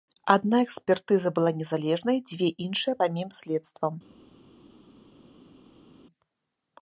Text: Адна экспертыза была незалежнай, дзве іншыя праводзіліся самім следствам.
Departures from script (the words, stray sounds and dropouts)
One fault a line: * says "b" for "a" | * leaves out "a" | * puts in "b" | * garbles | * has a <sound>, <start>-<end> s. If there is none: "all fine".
* leaves out "праводзіліся"